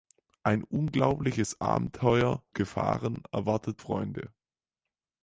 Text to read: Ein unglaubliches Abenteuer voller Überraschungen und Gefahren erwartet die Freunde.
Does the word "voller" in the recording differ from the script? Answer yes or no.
yes